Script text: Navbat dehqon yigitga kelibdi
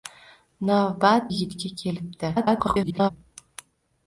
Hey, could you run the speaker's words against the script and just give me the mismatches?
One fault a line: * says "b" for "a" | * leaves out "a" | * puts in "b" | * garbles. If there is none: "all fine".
* leaves out "dehqon"
* garbles